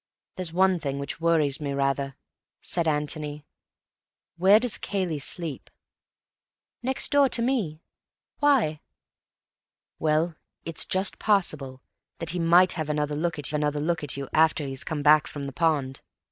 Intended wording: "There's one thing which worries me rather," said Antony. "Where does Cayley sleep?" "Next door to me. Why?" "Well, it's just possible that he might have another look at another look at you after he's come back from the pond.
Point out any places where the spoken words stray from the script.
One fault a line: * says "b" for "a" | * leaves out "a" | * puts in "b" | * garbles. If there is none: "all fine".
all fine